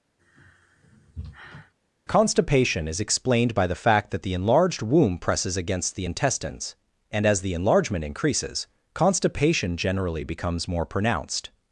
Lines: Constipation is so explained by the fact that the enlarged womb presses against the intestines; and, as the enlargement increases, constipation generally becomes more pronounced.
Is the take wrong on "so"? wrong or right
wrong